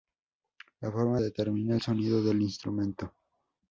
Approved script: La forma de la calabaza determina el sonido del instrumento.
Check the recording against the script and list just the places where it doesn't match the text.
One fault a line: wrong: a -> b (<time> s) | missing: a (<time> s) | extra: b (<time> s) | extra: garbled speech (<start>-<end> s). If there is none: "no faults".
missing: de la calabaza (1.2 s)